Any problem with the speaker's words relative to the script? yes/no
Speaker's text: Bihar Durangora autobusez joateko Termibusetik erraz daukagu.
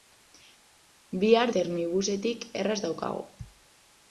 yes